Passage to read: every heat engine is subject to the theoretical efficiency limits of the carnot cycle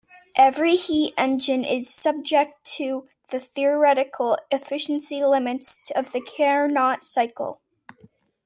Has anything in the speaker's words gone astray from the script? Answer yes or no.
no